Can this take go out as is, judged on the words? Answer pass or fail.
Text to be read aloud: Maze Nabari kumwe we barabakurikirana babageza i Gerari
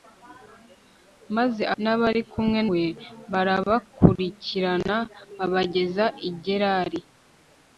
pass